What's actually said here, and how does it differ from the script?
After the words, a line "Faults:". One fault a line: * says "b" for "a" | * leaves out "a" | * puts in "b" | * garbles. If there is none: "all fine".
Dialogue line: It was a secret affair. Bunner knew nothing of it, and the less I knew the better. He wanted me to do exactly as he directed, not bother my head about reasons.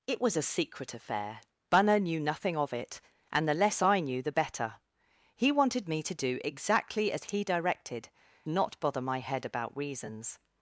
It was a secret affair. Bunner knew nothing of it, and the less I knew the better. He wanted me to do exactly as he directed, not bother my head about reasons.
Faults:
all fine